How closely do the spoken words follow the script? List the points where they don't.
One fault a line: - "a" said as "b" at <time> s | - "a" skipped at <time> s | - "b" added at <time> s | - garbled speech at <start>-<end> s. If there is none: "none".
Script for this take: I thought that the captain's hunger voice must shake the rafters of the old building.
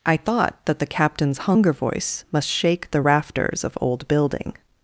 - "the" skipped at 3.8 s